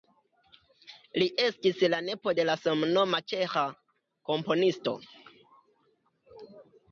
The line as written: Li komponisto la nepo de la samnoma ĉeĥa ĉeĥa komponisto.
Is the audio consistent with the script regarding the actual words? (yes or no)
no